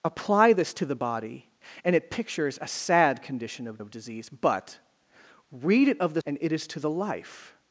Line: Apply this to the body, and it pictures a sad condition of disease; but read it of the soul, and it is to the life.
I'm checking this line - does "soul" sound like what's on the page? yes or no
no